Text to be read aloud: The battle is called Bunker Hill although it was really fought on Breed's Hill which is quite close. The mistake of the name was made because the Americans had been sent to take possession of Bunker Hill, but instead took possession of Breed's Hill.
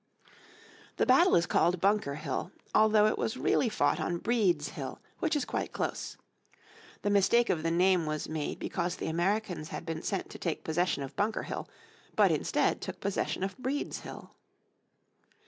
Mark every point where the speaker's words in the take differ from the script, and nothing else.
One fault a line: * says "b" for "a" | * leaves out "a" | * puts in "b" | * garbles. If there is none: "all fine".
all fine